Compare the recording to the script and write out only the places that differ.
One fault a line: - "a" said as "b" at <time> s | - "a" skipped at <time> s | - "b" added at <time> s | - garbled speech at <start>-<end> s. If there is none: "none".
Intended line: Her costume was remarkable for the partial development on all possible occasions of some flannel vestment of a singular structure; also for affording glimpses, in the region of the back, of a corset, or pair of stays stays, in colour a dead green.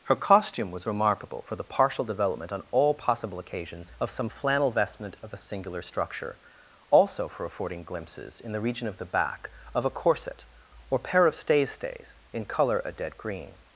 none